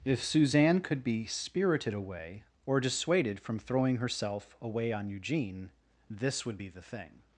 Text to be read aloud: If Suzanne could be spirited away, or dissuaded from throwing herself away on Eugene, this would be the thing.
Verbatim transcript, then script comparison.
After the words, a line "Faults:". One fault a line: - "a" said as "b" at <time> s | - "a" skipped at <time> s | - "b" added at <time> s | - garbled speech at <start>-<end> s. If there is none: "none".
If Suzanne could be spirited away, or dissuaded from throwing herself away on Eugene, this would be the thing.
Faults:
none